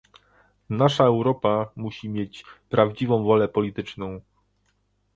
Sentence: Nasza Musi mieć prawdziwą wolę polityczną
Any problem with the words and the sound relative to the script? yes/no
yes